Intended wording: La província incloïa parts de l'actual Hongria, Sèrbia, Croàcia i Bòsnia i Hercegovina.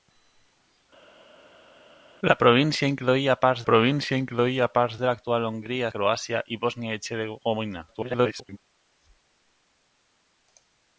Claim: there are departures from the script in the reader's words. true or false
true